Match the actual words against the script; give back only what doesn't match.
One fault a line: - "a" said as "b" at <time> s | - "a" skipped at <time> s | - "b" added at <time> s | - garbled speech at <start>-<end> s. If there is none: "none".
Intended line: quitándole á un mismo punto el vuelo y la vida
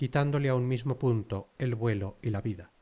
none